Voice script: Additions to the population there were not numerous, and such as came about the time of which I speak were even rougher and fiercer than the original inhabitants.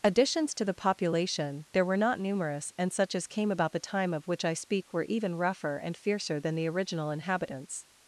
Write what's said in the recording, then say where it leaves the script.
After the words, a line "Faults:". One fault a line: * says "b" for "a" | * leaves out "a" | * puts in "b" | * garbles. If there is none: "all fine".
Additions to the population there were not numerous, and such as came about the time of which I speak were even rougher and fiercer than the original inhabitants.
Faults:
all fine